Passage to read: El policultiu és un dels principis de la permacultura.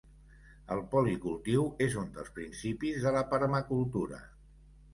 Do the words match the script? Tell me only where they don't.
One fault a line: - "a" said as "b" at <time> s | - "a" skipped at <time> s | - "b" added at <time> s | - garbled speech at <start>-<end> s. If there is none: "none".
none